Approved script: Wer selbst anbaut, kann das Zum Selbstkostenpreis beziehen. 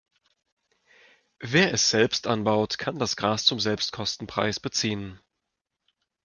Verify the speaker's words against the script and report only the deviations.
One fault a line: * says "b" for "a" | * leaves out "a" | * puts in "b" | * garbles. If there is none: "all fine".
* puts in "es"
* puts in "Gras"